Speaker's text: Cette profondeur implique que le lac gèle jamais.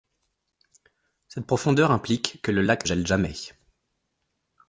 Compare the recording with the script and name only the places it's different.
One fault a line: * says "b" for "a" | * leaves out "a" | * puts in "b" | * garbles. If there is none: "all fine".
all fine